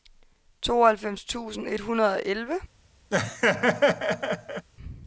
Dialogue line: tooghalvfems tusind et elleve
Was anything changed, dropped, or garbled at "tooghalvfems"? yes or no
no